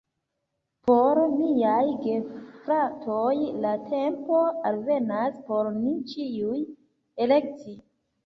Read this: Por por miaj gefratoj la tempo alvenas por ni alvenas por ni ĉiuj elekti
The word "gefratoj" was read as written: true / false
true